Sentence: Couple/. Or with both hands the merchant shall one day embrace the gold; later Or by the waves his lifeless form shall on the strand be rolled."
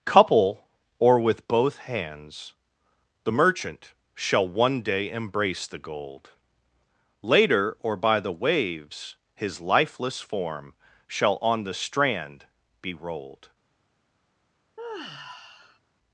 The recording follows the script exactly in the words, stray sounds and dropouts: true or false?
false